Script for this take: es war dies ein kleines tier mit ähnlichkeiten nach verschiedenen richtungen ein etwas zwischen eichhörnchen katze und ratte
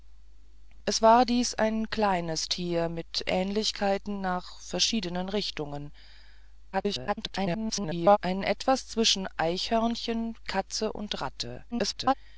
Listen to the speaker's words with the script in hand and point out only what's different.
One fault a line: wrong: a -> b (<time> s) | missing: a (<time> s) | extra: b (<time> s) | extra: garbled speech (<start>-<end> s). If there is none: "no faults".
extra: garbled speech (6.7-8.2 s)
extra: garbled speech (11.7-12.1 s)